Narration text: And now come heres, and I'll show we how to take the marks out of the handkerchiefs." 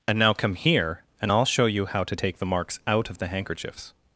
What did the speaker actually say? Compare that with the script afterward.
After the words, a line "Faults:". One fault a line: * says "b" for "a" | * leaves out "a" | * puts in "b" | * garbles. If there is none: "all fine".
And now come here, and I'll show you how to take the marks out of the handkerchiefs."
Faults:
* says "here" for "heres"
* says "you" for "we"